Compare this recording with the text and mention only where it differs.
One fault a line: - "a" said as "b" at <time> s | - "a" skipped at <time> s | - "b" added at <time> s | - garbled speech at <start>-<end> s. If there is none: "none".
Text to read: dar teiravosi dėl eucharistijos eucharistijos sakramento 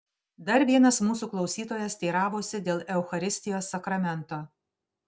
- "vienas mūsų klausytojas" added at 0.7 s
- "eucharistijos" skipped at 3.7 s